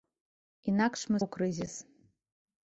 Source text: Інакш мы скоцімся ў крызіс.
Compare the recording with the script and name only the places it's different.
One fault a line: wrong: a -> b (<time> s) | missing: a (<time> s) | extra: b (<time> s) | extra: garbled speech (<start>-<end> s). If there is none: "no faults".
missing: скоцімся (1.2 s)